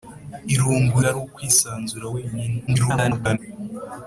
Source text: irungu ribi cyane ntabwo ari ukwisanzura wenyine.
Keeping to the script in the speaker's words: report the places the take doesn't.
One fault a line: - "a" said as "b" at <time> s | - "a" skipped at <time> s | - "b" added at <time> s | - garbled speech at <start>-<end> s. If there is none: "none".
- "ribi cyane ntabwo" skipped at 1.0 s
- garbled speech at 2.7-3.4 s